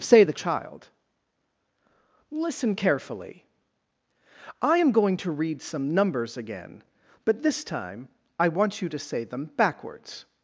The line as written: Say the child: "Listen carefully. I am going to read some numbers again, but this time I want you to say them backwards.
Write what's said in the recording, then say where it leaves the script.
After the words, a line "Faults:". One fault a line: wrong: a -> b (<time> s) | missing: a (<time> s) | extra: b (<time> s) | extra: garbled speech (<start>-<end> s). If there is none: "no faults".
Say the child: "Listen carefully. I am going to read some numbers again, but this time I want you to say them backwards.
Faults:
no faults